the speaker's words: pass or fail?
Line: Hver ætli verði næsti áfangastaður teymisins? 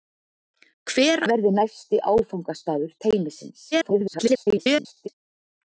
fail